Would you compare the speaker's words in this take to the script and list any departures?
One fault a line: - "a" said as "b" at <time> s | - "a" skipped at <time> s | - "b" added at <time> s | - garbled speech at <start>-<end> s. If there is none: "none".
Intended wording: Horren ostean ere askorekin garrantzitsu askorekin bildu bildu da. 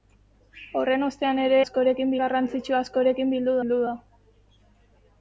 none